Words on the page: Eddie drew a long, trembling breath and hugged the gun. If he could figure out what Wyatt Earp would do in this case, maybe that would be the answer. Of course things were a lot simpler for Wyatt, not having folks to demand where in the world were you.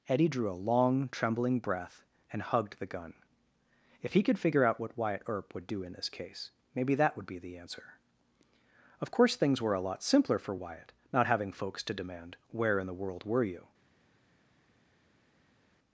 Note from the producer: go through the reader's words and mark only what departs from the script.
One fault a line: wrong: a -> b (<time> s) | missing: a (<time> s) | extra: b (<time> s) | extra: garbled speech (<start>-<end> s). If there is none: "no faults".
no faults